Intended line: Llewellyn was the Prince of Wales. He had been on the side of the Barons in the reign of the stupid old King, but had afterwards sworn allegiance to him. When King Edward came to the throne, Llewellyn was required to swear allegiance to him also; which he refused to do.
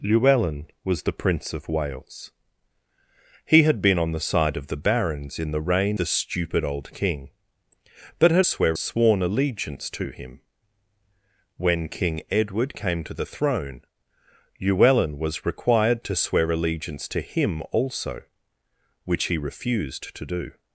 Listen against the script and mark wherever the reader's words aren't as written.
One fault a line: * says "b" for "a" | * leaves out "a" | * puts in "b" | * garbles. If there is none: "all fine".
* leaves out "of"
* says "swear" for "afterwards"